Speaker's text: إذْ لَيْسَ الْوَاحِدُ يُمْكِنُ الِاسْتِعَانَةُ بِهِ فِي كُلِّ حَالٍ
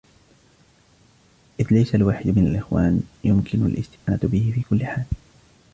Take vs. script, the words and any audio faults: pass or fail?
fail